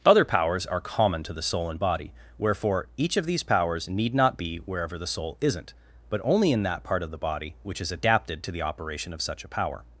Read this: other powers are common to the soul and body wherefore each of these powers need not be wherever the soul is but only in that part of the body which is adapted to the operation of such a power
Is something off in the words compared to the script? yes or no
yes